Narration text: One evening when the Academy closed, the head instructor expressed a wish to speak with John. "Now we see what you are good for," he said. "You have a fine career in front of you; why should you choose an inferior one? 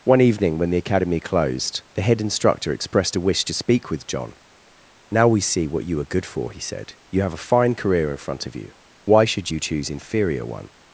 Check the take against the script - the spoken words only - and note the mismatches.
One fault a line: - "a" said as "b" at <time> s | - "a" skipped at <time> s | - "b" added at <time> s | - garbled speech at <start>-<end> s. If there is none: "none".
- "an" skipped at 9.9 s